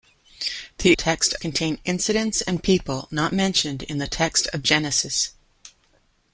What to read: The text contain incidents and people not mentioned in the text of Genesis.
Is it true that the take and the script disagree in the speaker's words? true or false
false